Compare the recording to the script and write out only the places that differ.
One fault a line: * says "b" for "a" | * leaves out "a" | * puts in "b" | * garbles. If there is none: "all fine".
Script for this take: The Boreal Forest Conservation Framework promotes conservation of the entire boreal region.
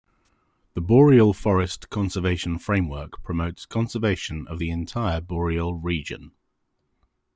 all fine